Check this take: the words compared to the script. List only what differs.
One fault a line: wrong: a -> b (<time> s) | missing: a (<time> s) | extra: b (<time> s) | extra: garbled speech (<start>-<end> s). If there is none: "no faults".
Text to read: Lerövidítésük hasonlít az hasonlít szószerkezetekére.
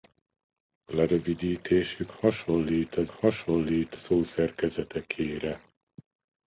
no faults